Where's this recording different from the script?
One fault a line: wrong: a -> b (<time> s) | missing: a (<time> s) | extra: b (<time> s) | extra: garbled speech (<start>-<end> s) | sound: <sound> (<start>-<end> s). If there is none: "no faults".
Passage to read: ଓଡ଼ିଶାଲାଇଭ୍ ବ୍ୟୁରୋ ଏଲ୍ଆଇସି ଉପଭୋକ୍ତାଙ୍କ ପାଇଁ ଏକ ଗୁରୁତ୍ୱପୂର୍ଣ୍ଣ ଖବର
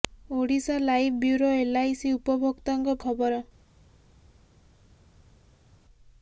missing: ପାଇଁ ଏକ ଗୁରୁତ୍ୱପୂର୍ଣ୍ଣ (3.0 s)